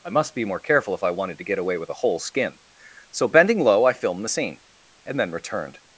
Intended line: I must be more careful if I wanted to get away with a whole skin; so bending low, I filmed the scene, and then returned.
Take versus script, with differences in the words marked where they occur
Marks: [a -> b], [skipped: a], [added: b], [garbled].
I must be more careful if I wanted to get away with a whole skin; so bending low, I filmed the scene, and then returned.